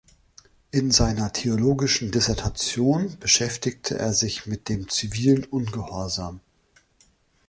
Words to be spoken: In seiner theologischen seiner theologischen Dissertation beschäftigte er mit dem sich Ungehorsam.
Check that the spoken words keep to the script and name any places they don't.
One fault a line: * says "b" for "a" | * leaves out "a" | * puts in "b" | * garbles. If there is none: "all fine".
* leaves out "seiner theologischen"
* puts in "sich"
* says "zivilen" for "sich"